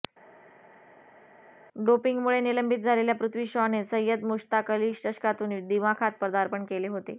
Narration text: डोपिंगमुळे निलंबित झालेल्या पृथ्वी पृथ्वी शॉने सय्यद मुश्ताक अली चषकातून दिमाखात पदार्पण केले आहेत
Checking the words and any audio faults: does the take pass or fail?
fail